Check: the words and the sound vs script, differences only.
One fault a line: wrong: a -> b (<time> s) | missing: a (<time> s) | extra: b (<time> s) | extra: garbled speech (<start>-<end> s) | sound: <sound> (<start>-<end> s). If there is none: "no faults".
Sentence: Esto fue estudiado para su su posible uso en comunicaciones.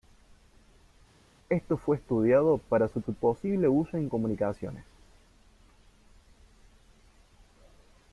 no faults